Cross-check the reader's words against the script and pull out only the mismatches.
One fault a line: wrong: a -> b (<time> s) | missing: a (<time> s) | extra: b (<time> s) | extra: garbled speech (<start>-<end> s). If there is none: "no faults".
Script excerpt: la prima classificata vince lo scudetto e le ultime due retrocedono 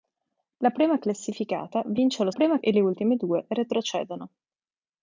wrong: scudetto -> prima (2.3 s)